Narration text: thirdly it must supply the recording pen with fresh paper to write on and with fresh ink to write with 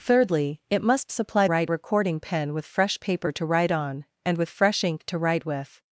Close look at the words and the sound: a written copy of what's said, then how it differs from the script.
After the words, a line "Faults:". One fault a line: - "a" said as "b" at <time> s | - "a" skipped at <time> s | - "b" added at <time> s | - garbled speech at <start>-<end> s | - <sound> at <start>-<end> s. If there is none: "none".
thirdly it must supply write recording pen with fresh paper to write on and with fresh ink to write with
Faults:
- "the" said as "write" at 1.4 s